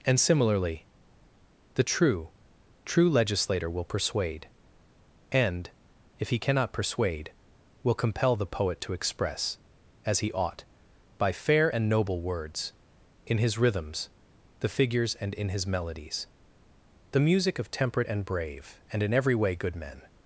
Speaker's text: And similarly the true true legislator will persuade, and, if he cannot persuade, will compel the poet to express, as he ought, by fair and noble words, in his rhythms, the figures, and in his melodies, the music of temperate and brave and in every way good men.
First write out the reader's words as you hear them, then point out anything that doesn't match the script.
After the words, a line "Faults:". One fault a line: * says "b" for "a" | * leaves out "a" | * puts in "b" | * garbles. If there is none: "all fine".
And similarly the true true legislator will persuade, and, if he cannot persuade, will compel the poet to express, as he ought, by fair and noble words, in his rhythms, the figures, and in his melodies, the music of temperate and brave and in every way good men.
Faults:
all fine